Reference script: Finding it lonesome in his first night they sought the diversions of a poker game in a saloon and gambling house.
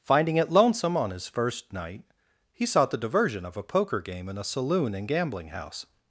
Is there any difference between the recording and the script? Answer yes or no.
yes